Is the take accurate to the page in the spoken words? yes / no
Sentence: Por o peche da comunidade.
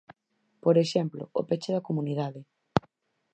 no